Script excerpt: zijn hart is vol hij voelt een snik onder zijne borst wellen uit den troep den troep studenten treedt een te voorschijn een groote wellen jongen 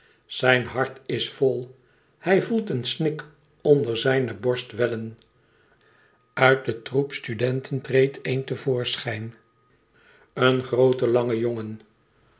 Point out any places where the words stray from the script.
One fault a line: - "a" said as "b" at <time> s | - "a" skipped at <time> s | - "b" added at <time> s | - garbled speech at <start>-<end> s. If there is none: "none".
- "den troep" skipped at 7.1 s
- "wellen" said as "lange" at 11.1 s